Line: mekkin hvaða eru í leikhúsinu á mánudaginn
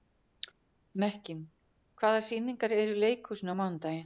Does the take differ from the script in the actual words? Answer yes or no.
yes